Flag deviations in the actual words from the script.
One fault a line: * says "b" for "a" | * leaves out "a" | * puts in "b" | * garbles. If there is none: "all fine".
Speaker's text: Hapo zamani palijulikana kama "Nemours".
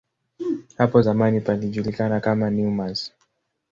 all fine